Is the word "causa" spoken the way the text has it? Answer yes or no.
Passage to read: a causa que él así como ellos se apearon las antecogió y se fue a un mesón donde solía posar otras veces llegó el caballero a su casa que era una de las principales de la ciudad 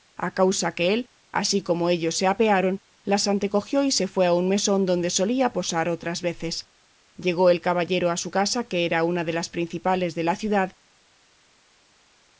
yes